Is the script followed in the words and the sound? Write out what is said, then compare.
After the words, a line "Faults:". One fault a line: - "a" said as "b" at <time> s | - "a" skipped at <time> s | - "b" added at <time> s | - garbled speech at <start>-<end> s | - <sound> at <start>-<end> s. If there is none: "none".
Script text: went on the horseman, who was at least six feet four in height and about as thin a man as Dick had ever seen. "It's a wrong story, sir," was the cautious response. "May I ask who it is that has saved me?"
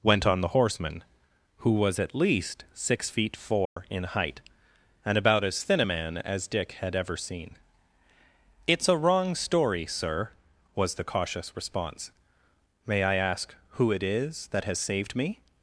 went on the horseman, who was at least six feet four in height and about as thin a man as Dick had ever seen. "It's a wrong story, sir," was the cautious response. "May I ask who it is that has saved me?"
Faults:
- dropout at 3.7-3.8 s